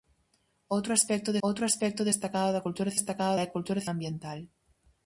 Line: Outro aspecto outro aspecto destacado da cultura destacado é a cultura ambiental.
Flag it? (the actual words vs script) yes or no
no